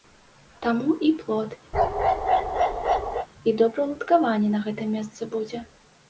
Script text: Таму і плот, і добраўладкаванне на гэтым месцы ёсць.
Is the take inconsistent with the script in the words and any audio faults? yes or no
yes